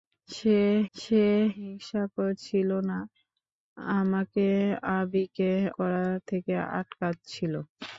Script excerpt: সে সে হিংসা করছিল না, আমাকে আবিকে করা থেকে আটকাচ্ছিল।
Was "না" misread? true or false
false